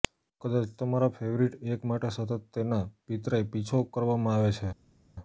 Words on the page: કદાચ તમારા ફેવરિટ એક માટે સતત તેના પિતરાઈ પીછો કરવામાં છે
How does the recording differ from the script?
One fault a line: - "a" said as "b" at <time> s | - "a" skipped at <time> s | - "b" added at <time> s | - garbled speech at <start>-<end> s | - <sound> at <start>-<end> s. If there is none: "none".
- "આવે" added at 4.3 s